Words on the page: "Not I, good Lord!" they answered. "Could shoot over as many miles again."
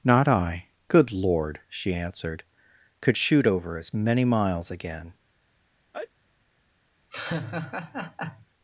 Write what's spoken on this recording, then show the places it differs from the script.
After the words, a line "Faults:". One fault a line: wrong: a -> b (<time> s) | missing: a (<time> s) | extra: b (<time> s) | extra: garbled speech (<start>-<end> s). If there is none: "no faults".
"Not I, good Lord!" she answered. "Could shoot over as many miles again."
Faults:
wrong: they -> she (1.7 s)